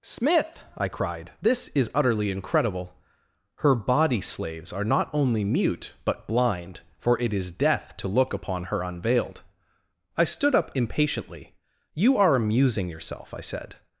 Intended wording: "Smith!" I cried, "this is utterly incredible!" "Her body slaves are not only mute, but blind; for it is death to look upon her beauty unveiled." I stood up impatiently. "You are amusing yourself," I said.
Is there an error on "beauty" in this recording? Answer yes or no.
yes